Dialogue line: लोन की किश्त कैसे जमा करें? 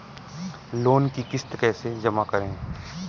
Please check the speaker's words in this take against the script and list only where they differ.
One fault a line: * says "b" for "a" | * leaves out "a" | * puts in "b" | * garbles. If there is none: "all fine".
all fine